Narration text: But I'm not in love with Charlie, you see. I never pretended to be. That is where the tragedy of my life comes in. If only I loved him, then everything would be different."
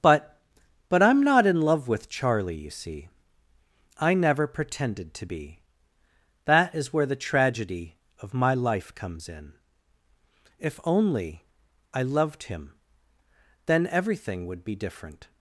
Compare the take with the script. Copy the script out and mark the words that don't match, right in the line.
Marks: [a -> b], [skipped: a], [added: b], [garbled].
But [added: but] I'm not in love with Charlie, you see. I never pretended to be. That is where the tragedy of my life comes in. If only I loved him, then everything would be different."